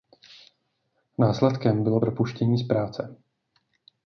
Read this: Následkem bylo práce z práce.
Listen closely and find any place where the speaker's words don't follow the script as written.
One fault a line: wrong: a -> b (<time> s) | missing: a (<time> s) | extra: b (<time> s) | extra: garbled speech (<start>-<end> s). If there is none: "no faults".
wrong: práce -> propuštění (2.0 s)